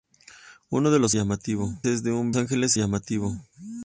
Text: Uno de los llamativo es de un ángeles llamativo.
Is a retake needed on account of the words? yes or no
no